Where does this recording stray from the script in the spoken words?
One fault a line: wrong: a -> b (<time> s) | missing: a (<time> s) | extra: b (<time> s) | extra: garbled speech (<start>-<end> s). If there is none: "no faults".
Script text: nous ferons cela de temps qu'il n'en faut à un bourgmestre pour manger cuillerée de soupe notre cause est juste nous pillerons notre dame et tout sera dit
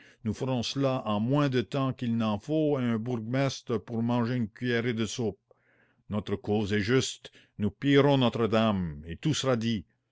extra: en moins (1.1 s)
extra: une (4.4 s)